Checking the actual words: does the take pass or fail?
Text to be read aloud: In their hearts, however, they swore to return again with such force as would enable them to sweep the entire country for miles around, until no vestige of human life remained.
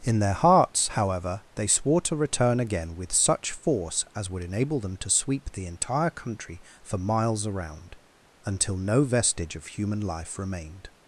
pass